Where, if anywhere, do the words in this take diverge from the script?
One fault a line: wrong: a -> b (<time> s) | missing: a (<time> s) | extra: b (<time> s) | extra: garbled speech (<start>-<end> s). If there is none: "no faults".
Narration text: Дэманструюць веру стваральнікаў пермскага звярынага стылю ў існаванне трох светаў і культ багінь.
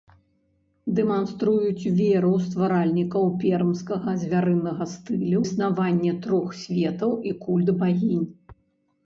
missing: ў (5.4 s)